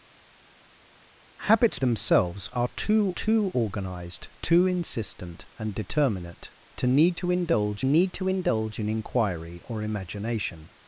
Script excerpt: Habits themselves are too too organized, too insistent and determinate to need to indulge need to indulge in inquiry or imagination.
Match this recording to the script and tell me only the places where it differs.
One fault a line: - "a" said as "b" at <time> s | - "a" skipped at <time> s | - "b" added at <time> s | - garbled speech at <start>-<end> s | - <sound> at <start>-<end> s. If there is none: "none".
none